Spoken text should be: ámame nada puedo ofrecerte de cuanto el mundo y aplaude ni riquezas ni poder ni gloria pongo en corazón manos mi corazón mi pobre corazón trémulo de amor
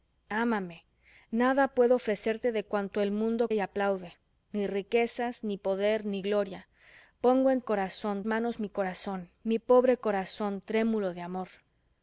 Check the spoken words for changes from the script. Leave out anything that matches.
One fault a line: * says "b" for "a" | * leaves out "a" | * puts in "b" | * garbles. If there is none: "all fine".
all fine